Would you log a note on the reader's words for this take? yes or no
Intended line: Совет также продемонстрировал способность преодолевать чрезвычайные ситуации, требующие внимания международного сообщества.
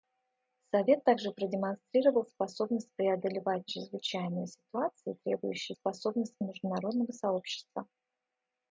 yes